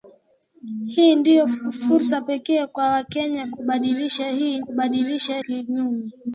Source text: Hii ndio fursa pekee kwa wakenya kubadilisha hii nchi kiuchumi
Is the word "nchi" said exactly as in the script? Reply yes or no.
no